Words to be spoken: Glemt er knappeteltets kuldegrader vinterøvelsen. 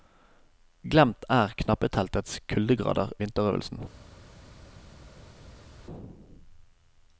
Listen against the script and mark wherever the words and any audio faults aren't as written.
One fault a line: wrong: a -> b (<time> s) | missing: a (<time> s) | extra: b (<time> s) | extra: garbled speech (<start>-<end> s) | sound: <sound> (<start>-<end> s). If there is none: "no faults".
no faults